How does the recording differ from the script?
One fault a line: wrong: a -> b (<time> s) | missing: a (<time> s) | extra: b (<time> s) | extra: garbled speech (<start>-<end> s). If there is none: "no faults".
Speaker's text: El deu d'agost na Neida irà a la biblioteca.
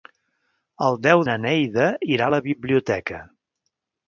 missing: d'agost (1.2 s)